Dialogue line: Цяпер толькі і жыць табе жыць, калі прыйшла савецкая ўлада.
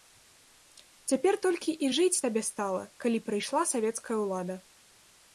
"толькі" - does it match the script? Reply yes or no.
yes